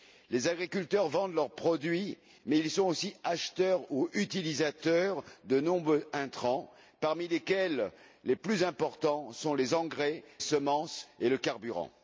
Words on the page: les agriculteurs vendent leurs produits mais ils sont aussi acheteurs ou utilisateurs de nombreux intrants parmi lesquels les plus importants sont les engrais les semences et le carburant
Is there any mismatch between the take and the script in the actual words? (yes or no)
yes